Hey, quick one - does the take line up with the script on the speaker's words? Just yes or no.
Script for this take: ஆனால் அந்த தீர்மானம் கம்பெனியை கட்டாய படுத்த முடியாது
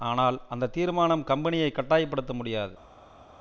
yes